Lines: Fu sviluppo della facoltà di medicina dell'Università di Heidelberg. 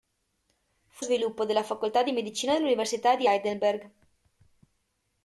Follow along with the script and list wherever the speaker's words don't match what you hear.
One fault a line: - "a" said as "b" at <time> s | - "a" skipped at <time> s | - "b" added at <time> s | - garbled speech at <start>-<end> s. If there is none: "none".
none